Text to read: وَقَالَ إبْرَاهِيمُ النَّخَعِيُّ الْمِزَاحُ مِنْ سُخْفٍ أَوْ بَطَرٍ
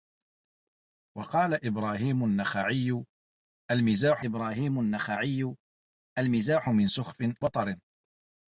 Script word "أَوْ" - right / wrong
wrong